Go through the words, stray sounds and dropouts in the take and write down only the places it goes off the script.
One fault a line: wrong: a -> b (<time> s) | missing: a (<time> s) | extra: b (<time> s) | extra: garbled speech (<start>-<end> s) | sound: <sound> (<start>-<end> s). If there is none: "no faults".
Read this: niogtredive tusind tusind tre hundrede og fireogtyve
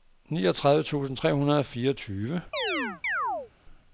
missing: tusind (1.2 s)
sound: chirp (2.5-3.5 s)